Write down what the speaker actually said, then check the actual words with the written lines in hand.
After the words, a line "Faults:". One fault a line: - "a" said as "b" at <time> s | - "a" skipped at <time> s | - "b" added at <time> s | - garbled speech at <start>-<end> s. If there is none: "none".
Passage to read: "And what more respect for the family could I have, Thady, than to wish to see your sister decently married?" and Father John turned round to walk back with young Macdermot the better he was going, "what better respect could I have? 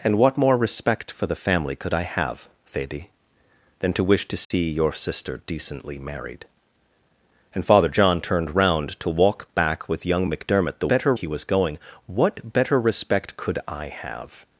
"And what more respect for the family could I have, Thady, than to wish to see your sister decently married?" and Father John turned round to walk back with young Macdermot the better he was going, "what better respect could I have?
Faults:
none